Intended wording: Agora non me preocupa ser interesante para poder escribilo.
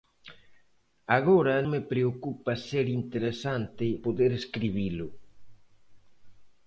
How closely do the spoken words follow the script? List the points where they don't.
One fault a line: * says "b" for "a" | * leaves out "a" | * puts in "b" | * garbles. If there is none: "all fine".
* leaves out "non"
* leaves out "para"